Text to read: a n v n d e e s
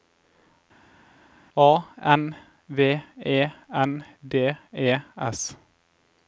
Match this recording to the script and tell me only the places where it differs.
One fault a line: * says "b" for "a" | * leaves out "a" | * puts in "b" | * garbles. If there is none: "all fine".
* puts in "e"
* leaves out "e"